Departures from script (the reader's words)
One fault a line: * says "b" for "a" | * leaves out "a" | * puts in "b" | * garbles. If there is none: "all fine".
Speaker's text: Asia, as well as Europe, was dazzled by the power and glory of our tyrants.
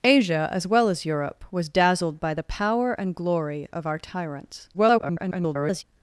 * garbles